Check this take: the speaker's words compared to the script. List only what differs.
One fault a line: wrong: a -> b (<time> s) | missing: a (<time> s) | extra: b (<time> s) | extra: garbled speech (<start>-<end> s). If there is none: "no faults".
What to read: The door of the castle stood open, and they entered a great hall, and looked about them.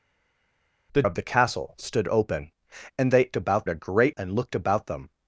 missing: door (1.0 s)
wrong: entered -> about (3.3 s)
missing: hall (4.2 s)